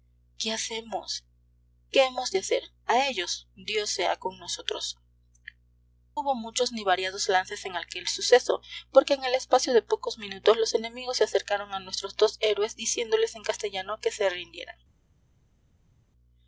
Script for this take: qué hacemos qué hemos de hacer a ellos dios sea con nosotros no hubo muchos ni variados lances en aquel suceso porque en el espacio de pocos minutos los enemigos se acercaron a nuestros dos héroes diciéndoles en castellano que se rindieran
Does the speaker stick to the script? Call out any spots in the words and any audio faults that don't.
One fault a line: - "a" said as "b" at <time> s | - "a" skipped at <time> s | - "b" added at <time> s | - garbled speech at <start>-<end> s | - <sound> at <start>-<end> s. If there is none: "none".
- "no" skipped at 5.0 s